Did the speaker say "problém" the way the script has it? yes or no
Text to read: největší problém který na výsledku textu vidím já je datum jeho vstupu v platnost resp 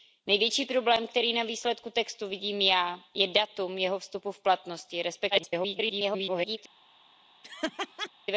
yes